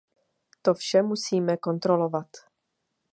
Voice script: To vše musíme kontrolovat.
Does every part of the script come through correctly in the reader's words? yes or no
yes